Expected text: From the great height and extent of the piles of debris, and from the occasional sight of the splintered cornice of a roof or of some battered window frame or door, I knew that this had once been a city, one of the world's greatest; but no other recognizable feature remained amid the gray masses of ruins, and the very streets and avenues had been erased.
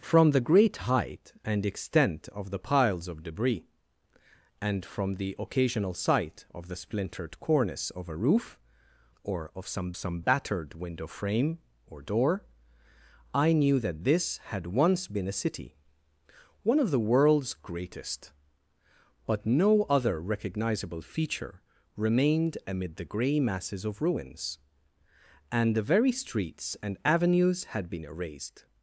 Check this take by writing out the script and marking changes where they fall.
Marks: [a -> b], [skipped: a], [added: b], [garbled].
From the great height and extent of the piles of debris, and from the occasional sight of the splintered cornice of a roof or of some [added: some] battered window frame or door, I knew that this had once been a city, one of the world's greatest; but no other recognizable feature remained amid the gray masses of ruins, and the very streets and avenues had been erased.